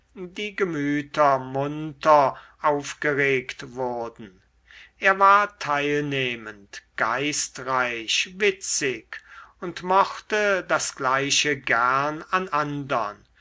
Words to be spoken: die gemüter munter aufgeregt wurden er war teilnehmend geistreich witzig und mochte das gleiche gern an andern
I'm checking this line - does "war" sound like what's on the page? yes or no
yes